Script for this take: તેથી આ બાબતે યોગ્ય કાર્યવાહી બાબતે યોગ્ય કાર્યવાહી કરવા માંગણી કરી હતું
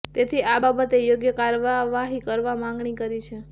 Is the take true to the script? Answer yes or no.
no